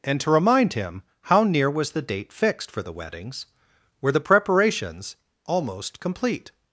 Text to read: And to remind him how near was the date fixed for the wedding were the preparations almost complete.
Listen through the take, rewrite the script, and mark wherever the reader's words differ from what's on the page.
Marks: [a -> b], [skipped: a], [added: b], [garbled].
And to remind him how near was the date fixed for the [wedding -> weddings] were the preparations almost complete.